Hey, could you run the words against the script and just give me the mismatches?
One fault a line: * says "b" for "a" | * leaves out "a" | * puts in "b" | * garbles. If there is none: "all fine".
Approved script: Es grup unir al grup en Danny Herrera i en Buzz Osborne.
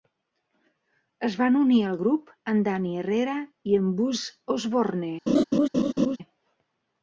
* says "van" for "grup"